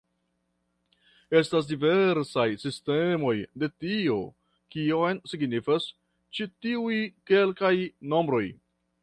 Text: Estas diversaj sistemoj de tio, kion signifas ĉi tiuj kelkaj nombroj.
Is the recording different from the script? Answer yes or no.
no